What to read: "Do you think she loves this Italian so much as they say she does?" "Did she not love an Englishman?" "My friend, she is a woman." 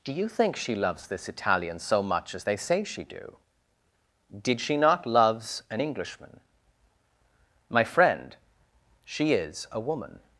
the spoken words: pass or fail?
fail